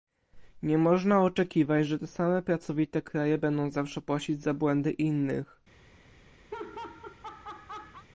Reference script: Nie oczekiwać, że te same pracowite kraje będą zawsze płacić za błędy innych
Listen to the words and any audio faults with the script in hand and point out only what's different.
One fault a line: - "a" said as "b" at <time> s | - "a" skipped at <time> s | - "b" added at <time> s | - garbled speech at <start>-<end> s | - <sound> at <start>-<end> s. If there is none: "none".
- "można" added at 0.8 s
- laugh at 6.5-8.1 s